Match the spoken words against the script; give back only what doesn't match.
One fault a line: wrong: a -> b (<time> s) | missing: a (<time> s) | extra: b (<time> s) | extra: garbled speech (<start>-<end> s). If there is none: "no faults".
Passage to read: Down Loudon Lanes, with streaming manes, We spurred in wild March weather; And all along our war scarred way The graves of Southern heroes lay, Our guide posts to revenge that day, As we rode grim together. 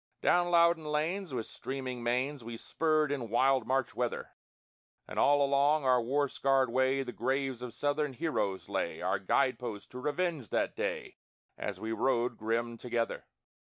no faults